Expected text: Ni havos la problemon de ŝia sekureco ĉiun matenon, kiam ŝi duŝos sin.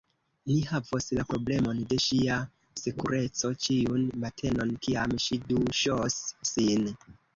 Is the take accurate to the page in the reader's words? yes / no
yes